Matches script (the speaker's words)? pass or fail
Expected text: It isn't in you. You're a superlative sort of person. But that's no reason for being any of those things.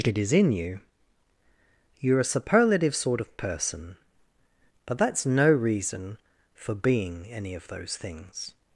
fail